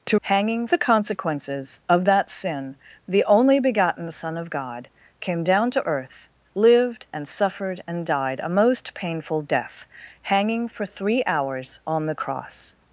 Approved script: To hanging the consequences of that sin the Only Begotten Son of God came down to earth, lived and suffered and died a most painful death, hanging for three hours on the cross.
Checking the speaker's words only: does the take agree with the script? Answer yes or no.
yes